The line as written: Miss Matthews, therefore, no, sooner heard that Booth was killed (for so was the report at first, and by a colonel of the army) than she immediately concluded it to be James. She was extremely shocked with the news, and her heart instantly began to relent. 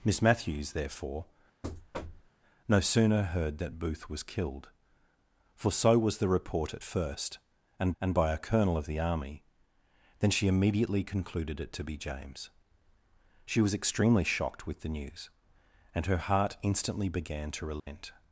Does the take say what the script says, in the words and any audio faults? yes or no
no